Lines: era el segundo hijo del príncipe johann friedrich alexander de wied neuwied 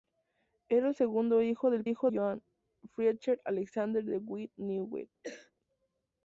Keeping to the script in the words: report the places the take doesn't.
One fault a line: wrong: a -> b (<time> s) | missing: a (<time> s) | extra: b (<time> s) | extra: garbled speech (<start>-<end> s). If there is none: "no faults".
wrong: príncipe -> hijo (1.8 s)